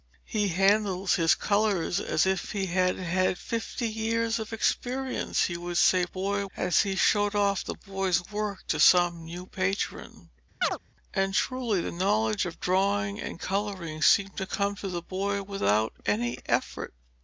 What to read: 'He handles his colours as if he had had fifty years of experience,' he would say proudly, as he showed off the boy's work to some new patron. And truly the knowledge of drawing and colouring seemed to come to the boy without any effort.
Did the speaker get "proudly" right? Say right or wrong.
wrong